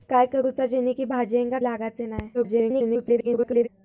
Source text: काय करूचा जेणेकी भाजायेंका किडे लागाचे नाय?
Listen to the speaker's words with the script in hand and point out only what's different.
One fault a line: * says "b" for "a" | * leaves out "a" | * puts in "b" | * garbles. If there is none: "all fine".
* leaves out "किडे"
* garbles